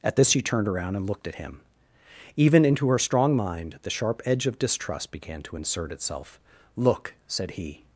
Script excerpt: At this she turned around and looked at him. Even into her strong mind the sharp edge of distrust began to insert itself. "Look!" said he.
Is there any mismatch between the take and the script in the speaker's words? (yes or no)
no